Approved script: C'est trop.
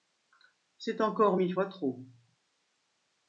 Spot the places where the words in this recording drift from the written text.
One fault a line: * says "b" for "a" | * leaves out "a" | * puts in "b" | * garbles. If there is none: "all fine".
* puts in "encore mille fois"